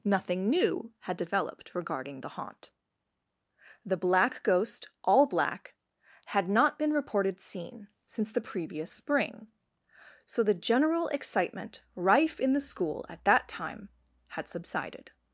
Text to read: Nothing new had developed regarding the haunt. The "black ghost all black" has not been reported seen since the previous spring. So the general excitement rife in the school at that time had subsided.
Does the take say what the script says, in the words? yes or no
no